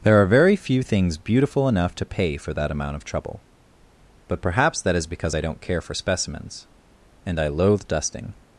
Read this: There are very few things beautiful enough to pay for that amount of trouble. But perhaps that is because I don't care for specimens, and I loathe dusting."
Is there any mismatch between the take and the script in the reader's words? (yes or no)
no